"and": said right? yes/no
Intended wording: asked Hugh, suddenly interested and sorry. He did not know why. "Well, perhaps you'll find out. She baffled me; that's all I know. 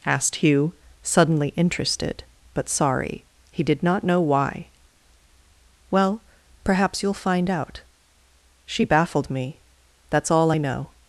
no